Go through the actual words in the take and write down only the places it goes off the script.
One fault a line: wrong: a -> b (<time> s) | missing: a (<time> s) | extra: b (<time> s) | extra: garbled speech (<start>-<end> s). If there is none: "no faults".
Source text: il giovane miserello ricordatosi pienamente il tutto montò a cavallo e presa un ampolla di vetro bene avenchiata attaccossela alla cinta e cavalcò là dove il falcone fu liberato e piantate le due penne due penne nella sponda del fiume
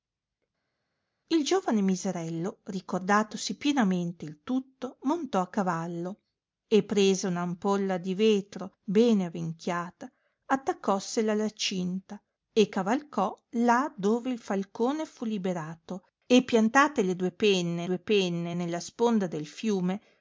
no faults